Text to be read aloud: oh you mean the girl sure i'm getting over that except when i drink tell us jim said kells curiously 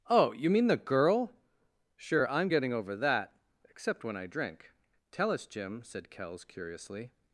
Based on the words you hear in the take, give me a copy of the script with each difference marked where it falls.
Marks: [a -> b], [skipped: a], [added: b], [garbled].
oh you mean the girl sure i'm getting over that except when i drink tell us jim said kells curiously